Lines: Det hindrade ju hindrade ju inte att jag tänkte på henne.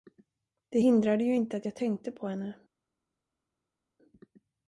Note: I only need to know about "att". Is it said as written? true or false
true